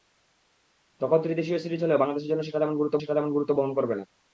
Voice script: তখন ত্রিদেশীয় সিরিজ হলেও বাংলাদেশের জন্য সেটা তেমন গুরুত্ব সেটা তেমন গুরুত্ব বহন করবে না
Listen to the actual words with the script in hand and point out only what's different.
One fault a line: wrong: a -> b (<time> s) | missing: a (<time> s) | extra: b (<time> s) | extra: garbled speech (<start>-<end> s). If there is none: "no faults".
no faults